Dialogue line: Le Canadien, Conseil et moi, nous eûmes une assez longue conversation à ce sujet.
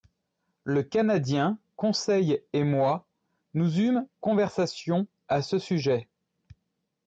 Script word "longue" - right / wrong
wrong